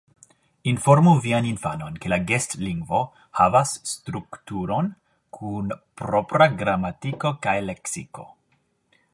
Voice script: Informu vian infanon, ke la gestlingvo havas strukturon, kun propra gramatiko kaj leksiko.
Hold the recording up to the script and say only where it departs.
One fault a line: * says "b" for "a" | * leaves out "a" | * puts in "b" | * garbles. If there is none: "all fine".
all fine